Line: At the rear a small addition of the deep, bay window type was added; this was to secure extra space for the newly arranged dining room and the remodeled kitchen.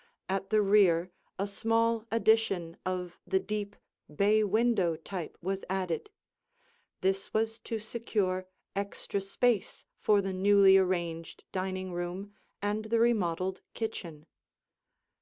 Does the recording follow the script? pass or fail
pass